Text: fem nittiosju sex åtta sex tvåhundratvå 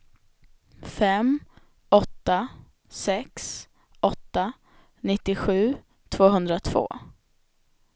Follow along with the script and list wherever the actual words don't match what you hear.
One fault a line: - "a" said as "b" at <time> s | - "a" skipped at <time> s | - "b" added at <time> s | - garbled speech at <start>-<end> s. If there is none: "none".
- "nittiosju" said as "åtta" at 1.9 s
- "sex" said as "nittiosju" at 5.0 s